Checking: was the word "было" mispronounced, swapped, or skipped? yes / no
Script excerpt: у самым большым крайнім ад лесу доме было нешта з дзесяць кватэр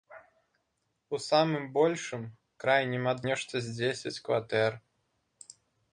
yes